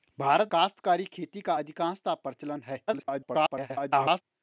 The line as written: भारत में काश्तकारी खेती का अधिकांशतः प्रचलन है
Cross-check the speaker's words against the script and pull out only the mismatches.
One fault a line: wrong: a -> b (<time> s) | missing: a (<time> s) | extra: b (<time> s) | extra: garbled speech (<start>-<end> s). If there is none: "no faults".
missing: में (0.5 s)
extra: garbled speech (2.9-4.2 s)